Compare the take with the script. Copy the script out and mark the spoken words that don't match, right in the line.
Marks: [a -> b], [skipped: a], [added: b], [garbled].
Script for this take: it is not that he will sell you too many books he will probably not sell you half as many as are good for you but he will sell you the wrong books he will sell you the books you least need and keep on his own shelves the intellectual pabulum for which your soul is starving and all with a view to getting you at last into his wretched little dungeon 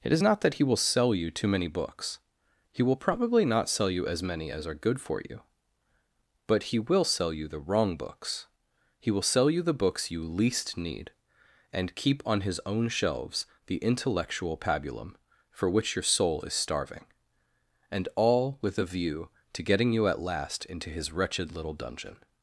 it is not that he will sell you too many books he will probably not sell you [skipped: half] as many as are good for you but he will sell you the wrong books he will sell you the books you least need and keep on his own shelves the intellectual pabulum for which your soul is starving and all with a view to getting you at last into his wretched little dungeon